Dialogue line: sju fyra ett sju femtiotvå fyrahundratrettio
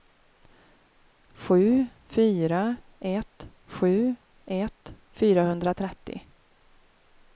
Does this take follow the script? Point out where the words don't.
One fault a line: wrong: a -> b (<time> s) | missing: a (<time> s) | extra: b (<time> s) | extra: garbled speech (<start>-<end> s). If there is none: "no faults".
wrong: femtiotvå -> ett (4.4 s)